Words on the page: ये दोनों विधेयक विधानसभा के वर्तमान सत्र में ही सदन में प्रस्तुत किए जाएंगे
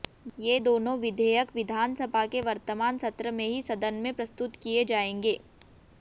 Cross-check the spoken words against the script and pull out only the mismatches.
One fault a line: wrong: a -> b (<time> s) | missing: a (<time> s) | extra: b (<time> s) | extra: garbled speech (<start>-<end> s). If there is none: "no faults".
no faults